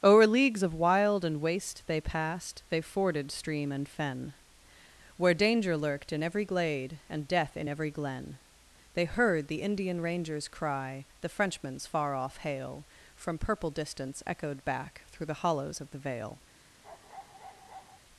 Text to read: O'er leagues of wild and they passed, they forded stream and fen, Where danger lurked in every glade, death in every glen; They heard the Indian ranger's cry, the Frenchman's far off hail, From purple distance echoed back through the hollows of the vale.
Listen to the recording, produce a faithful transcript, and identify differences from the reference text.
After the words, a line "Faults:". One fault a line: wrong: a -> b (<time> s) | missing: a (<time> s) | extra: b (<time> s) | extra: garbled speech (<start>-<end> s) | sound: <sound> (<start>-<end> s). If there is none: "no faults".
O'er leagues of wild and waste they passed, they forded stream and fen, Where danger lurked in every glade, and death in every glen; They heard the Indian ranger's cry, the Frenchman's far off hail, From purple distance echoed back through the hollows of the vale.
Faults:
extra: waste (1.4 s)
extra: and (7.1 s)
sound: bark (16.8-18.0 s)